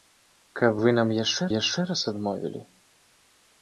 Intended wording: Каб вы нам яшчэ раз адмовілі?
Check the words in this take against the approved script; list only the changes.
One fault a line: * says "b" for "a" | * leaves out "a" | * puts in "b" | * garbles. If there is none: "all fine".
* puts in "яшчэ"